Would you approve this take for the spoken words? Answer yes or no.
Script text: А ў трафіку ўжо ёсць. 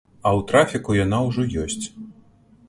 no